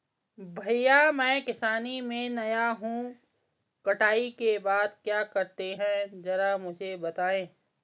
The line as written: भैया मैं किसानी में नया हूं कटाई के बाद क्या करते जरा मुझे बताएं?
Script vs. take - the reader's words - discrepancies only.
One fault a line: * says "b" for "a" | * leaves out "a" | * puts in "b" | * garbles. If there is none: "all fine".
* puts in "हैं"